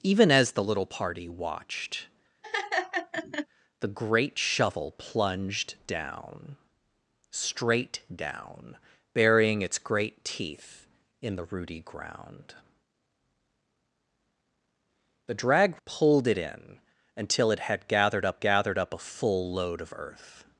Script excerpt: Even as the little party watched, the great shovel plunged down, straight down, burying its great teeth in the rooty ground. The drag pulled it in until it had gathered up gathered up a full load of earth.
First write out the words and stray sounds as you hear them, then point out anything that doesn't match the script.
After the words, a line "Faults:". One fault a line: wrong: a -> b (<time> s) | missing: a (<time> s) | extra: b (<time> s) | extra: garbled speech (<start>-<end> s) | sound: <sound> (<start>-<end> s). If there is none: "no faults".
Even as the little party watched, the great shovel plunged down, straight down, burying its great teeth in the rooty ground. The drag pulled it in until it had gathered up gathered up a full load of earth.
Faults:
sound: laugh (2.4-3.5 s)